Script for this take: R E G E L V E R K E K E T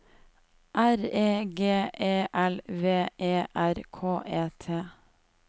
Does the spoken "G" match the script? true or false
true